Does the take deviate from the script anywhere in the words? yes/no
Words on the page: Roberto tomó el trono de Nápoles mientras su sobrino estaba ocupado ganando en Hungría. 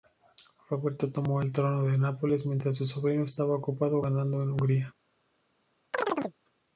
no